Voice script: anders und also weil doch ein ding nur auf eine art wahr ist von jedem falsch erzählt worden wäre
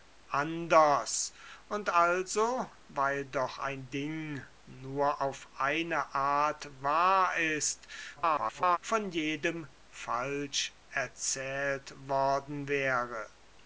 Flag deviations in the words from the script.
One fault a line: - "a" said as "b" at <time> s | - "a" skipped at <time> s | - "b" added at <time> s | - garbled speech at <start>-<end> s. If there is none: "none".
- garbled speech at 8.2-8.8 s